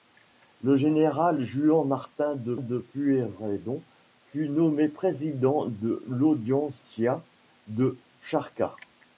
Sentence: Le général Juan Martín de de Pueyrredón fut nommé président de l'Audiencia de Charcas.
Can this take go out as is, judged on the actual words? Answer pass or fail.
pass